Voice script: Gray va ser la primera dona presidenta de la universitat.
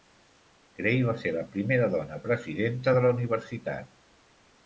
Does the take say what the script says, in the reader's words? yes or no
yes